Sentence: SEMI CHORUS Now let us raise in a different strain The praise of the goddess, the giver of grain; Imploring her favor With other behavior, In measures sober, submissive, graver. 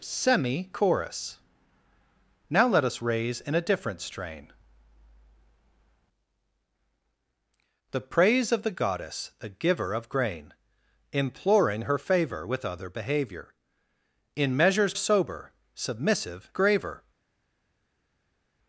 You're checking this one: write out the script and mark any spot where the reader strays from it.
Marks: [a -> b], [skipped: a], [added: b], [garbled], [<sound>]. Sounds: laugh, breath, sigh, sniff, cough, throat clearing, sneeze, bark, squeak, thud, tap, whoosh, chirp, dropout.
SEMI CHORUS Now let us raise in a different strain The praise of the goddess, the giver of grain; Imploring her favor With other behavior, In measures sober, submissive, graver.